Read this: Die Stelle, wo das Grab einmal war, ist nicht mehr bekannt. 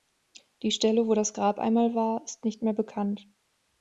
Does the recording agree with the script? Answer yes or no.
yes